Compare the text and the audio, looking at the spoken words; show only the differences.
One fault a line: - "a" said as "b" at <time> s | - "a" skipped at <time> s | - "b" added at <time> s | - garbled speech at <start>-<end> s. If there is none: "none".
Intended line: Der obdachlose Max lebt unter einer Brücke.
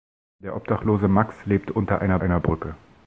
- "einer" added at 2.2 s